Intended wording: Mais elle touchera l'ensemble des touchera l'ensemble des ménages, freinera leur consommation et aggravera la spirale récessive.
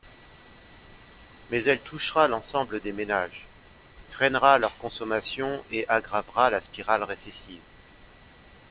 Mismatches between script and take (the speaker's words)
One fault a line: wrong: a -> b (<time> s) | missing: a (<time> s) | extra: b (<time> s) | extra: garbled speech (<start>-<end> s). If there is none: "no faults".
missing: touchera l'ensemble des (2.9 s)